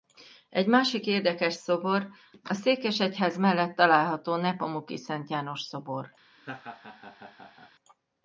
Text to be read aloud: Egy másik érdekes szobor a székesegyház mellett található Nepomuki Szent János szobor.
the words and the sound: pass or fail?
fail